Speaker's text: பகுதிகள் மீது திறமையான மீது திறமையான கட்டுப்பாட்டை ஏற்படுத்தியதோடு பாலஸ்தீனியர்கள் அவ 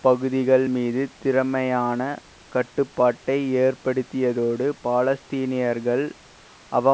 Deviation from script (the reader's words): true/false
true